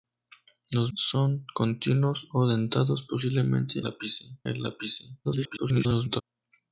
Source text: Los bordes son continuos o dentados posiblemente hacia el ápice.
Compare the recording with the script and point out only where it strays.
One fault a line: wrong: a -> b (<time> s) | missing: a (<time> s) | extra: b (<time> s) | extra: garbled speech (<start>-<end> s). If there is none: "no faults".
missing: bordes (0.9 s)
wrong: hacia -> ápice (3.8 s)
extra: garbled speech (5.2-6.2 s)